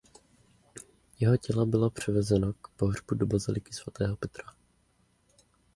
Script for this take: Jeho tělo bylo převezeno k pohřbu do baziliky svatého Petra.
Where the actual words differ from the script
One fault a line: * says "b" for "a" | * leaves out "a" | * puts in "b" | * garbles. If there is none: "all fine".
all fine